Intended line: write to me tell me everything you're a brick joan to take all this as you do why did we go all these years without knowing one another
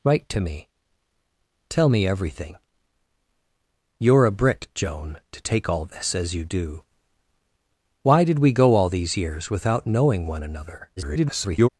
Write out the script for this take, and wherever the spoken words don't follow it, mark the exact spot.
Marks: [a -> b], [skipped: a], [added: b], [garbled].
write to me tell me everything you're a brick joan to take all this as you do why did we go all these years without knowing one another [garbled]